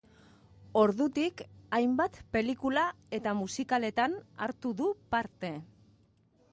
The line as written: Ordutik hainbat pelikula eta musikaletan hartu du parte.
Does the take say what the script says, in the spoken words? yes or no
yes